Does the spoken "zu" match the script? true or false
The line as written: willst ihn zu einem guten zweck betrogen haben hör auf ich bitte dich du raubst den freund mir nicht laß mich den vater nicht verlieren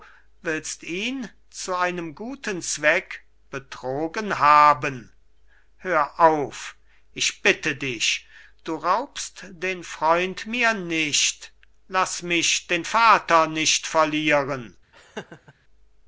true